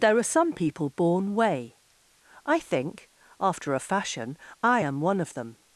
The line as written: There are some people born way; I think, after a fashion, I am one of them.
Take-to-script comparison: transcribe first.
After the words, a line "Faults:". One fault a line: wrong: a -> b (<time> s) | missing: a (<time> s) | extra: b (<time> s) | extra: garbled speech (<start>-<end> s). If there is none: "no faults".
There are some people born way; I think, after a fashion, I am one of them.
Faults:
no faults